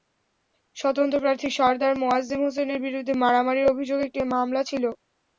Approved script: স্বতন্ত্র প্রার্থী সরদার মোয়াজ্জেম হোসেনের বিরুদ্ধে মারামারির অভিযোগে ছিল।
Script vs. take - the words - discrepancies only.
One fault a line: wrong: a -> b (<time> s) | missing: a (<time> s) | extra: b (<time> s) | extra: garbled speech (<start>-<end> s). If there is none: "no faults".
extra: একটি মামলা (4.1 s)